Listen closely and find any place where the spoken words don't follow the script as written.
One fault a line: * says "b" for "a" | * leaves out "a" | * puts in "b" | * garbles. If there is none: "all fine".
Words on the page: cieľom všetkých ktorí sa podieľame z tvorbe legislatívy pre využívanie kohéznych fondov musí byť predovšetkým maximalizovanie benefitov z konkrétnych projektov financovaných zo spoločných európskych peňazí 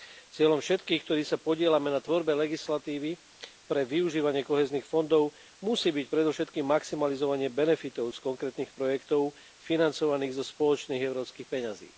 * says "na" for "z"